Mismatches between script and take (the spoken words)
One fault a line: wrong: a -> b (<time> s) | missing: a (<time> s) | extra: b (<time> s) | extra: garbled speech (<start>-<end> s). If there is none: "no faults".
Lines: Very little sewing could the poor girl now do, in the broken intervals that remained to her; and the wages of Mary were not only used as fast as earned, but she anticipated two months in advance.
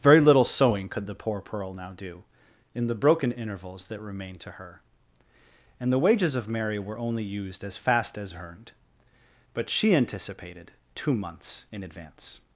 wrong: girl -> pearl (1.4 s)
missing: not (7.0 s)